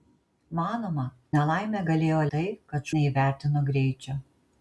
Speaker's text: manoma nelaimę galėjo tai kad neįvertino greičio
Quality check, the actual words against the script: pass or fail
pass